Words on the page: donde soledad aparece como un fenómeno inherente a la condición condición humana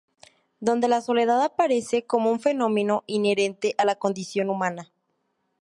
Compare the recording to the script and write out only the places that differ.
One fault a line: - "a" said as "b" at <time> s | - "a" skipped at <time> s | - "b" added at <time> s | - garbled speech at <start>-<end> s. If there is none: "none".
- "la" added at 0.9 s
- "condición" skipped at 4.5 s